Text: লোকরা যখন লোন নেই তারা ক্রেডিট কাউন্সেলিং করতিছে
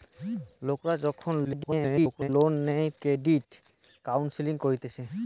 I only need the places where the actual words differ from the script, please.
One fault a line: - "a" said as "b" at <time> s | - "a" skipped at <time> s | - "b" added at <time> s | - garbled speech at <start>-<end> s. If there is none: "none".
- garbled speech at 1.4-2.3 s
- "তারা" skipped at 2.9 s